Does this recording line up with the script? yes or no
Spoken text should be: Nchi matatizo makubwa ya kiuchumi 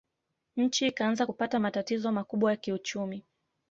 no